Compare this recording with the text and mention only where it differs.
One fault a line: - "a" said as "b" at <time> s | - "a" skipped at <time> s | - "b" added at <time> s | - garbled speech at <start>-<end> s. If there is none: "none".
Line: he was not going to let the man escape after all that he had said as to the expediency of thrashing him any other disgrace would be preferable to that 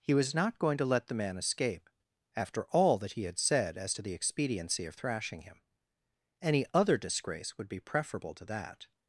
none